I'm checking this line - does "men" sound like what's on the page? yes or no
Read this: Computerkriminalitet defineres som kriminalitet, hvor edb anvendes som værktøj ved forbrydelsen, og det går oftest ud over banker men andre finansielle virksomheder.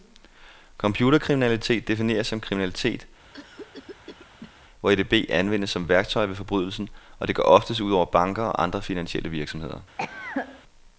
no